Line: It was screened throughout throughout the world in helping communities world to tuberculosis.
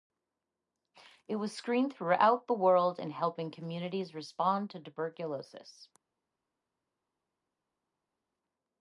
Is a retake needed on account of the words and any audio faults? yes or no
yes